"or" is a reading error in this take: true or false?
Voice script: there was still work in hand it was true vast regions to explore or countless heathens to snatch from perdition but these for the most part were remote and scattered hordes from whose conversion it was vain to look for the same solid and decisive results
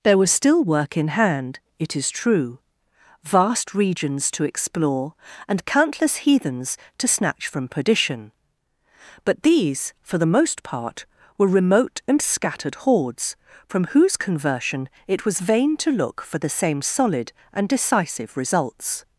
true